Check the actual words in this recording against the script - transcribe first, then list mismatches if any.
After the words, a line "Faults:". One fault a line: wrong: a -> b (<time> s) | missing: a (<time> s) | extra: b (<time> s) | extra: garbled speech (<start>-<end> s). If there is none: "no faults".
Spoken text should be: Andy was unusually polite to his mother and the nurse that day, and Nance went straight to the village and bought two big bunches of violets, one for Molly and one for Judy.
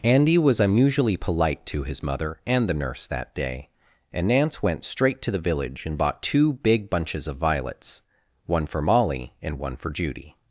Andy was unusually polite to his mother and the nurse that day, and Nance went straight to the village and bought two big bunches of violets, one for Molly and one for Judy.
Faults:
no faults